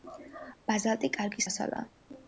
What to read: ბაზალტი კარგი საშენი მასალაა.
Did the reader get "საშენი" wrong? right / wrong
wrong